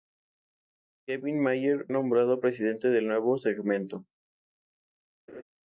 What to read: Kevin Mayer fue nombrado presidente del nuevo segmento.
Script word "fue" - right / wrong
wrong